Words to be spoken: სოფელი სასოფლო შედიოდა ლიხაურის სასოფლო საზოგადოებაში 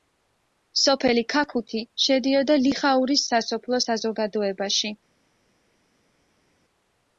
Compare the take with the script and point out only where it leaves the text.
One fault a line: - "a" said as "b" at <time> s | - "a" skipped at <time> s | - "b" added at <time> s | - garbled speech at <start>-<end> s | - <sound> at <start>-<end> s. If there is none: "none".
- "სასოფლო" said as "ქაქუთი" at 1.3 s